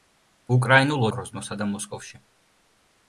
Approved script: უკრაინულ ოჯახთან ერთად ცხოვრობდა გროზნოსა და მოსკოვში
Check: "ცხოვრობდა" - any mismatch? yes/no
yes